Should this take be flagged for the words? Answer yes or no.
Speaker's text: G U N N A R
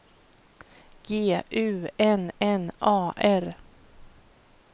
no